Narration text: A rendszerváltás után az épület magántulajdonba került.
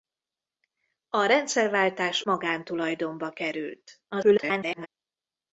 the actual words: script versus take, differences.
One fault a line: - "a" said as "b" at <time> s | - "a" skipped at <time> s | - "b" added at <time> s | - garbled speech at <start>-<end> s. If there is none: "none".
- "után az épület" skipped at 2.2 s
- garbled speech at 4.1-4.9 s